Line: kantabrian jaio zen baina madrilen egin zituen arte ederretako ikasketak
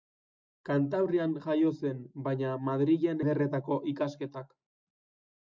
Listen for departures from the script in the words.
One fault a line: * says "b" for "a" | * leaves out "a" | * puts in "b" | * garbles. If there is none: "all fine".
* leaves out "egin zituen arte"